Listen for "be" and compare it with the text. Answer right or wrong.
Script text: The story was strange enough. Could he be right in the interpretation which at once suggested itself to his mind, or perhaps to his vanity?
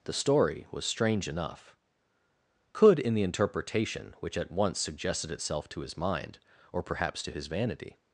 wrong